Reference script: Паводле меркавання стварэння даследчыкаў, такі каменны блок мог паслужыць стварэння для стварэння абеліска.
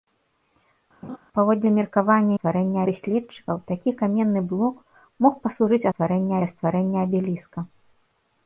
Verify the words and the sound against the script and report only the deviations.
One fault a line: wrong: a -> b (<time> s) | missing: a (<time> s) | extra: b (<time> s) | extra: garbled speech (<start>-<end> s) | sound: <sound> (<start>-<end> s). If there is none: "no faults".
sound: laugh (1.0-1.2 s)